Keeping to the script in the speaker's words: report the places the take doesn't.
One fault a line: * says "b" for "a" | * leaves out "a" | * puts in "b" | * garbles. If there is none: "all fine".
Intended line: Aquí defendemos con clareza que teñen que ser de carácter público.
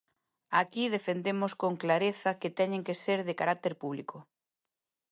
all fine